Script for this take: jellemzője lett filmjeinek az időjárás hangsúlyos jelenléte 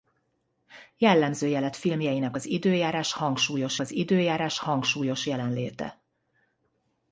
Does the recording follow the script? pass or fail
fail